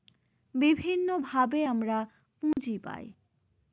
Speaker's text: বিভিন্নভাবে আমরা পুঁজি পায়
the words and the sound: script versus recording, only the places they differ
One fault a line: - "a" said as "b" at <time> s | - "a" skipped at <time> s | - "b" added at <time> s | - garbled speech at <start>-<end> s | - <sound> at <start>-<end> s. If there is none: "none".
- dropout at 2.5-2.6 s